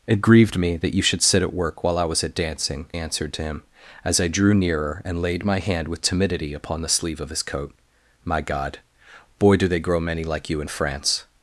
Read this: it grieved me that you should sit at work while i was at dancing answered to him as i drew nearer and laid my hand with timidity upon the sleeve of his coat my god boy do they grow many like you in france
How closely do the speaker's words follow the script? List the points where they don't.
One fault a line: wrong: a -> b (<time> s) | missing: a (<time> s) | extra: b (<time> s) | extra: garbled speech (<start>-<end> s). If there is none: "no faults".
no faults